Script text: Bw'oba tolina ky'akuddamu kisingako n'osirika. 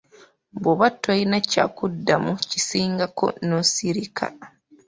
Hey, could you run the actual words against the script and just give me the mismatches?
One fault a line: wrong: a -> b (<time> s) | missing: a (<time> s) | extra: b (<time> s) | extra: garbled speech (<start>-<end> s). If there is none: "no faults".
no faults